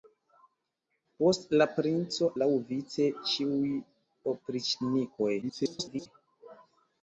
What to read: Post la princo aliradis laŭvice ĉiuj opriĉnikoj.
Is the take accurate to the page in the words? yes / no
no